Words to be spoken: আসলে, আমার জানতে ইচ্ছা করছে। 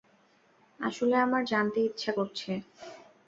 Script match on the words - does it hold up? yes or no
yes